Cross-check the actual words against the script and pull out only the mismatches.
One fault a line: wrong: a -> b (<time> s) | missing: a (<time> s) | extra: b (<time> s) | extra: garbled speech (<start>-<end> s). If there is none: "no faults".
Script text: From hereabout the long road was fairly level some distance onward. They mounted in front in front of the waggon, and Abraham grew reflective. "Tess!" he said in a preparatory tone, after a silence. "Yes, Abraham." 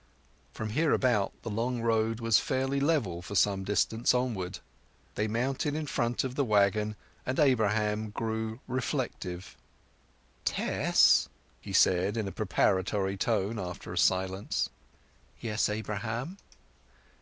extra: for (3.2 s)
missing: in front (6.2 s)